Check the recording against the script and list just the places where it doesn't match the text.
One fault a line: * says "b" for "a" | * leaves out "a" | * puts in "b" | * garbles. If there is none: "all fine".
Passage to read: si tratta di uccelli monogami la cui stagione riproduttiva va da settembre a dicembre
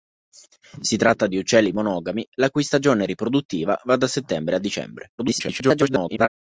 * garbles